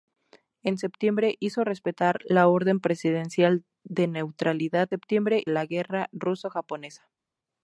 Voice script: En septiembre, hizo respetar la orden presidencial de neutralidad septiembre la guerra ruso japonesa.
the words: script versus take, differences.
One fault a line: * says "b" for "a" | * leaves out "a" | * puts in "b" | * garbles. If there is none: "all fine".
all fine